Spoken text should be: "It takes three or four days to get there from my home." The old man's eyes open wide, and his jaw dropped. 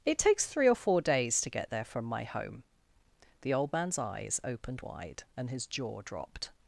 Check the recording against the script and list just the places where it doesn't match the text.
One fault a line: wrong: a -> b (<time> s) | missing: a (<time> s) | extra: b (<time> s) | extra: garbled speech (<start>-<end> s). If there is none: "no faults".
wrong: open -> opened (4.4 s)